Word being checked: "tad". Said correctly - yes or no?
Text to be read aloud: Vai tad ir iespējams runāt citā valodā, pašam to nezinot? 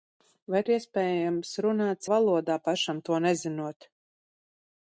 no